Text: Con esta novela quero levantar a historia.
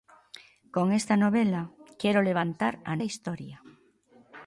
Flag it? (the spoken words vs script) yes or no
no